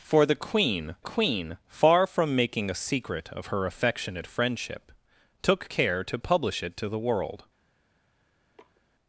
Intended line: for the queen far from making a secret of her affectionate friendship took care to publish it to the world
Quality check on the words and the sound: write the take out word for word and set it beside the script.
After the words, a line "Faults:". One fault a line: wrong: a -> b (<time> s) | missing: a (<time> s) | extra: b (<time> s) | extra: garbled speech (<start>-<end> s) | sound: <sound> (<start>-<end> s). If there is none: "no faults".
for the queen queen far from making a secret of her affectionate friendship took care to publish it to the world
Faults:
extra: queen (1.0 s)
sound: sniff (8.5-8.8 s)